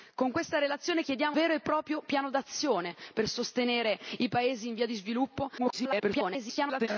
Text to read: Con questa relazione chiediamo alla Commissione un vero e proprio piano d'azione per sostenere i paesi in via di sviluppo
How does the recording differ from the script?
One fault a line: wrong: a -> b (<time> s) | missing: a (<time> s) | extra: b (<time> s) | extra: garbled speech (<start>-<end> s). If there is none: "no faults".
missing: alla Commissione un (1.4 s)
extra: garbled speech (5.6-6.9 s)